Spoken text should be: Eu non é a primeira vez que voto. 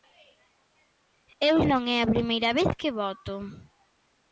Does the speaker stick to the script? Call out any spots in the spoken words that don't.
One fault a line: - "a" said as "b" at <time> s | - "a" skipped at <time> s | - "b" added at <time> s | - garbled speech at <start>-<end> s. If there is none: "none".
none